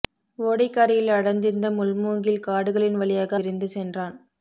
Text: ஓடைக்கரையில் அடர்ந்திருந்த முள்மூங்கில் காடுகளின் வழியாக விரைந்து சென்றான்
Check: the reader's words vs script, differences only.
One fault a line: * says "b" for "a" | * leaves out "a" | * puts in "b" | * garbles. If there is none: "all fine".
all fine